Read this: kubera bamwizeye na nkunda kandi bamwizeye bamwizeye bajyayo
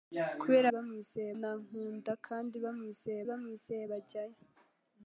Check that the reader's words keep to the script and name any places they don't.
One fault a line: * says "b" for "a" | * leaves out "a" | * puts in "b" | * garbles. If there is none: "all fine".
all fine